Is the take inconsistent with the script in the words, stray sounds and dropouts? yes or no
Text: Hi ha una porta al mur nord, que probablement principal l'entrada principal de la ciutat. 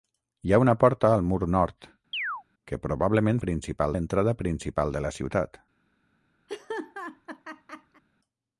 yes